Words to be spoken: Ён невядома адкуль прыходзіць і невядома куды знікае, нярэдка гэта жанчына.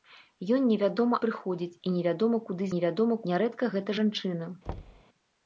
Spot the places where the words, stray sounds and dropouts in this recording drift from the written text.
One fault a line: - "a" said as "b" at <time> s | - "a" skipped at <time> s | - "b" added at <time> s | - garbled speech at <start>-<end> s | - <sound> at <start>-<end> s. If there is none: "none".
- "адкуль" skipped at 1.2 s
- "знікае" said as "невядома" at 2.7 s
- thud at 4.7-5.0 s